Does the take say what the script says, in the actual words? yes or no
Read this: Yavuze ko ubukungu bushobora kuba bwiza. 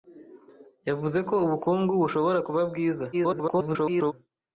no